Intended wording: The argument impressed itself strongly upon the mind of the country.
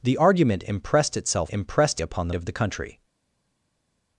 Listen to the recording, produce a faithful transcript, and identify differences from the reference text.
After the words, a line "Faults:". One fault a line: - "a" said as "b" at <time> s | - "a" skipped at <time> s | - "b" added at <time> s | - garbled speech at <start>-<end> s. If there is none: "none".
The argument impressed itself impressed upon the of the country.
Faults:
- "strongly" said as "impressed" at 1.5 s
- "mind" skipped at 2.3 s